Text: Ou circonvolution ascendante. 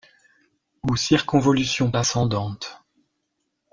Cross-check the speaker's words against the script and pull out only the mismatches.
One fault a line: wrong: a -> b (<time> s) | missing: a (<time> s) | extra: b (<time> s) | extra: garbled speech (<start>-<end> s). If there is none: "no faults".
no faults